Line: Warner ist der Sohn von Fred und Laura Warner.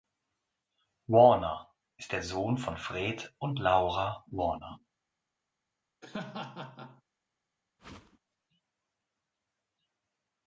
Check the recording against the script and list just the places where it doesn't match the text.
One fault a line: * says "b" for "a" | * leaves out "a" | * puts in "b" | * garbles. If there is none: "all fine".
all fine